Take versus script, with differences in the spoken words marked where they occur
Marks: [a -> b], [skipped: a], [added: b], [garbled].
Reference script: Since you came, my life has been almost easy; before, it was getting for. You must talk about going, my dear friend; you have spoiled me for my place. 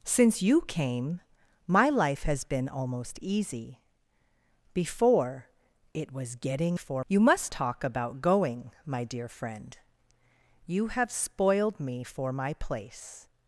Since you came, my life has been almost easy; before, it was getting for. You must talk about going, my dear friend; you have spoiled me for my place.